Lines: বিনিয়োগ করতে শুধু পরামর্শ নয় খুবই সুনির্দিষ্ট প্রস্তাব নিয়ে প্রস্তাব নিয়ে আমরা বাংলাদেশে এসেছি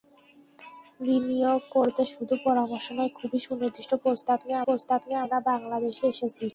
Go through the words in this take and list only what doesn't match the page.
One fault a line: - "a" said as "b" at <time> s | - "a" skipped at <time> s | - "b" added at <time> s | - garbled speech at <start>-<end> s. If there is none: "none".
none